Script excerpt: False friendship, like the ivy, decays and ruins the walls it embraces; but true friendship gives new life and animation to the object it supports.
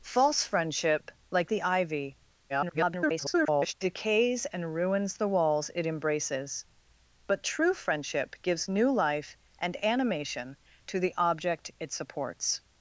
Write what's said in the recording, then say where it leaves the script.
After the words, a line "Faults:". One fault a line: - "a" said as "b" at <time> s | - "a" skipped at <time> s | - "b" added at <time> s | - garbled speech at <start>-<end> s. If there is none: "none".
False friendship, like the ivy, [garbled] decays and ruins the walls it embraces; but true friendship gives new life and animation to the object it supports.
Faults:
- garbled speech at 2.5-3.7 s